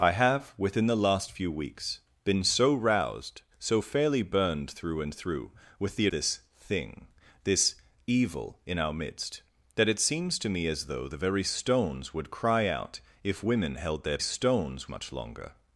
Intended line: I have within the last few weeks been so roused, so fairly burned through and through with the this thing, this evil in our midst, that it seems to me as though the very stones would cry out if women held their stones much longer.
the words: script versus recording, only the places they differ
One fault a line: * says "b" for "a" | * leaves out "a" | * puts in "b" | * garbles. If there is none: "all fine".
all fine